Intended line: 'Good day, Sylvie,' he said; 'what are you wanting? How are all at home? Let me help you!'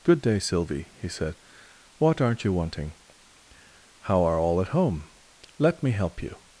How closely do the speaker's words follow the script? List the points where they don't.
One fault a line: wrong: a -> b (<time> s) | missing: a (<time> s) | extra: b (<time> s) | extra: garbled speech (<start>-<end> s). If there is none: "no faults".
wrong: are -> aren't (2.2 s)